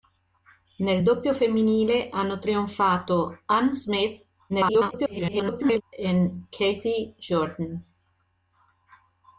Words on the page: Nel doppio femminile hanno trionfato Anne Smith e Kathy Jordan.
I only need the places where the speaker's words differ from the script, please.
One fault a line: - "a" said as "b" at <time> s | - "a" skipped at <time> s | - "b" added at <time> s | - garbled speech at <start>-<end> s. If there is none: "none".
- garbled speech at 4.5-5.8 s